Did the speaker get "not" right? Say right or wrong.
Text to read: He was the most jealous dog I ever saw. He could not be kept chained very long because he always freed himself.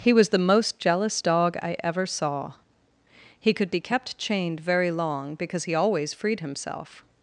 wrong